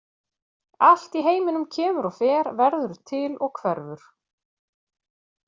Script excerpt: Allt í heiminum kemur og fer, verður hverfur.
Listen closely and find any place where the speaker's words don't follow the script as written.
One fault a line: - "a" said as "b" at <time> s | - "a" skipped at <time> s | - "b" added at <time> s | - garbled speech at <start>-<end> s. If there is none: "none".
- "til og" added at 3.1 s